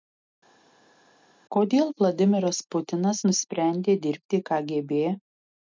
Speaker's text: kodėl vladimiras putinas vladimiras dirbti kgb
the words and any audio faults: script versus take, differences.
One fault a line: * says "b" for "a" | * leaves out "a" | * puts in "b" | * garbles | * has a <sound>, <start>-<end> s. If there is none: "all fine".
* says "nusprendė" for "vladimiras"